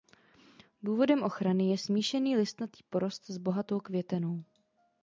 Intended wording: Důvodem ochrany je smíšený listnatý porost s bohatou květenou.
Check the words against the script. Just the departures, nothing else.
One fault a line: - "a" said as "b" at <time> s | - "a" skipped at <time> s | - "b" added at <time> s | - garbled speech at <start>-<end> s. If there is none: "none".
none